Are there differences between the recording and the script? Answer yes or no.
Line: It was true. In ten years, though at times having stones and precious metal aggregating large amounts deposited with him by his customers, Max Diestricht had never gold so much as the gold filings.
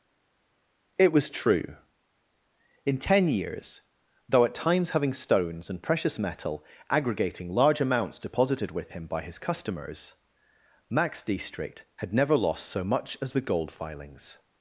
yes